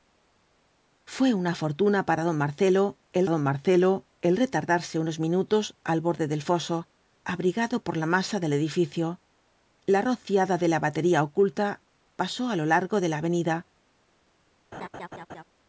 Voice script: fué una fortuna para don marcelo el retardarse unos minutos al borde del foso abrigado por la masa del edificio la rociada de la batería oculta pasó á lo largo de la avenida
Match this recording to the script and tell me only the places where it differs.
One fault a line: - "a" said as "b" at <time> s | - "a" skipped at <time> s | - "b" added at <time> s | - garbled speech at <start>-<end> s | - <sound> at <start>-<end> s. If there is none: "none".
- "don marcelo el" added at 3.3 s
- laugh at 14.7-15.4 s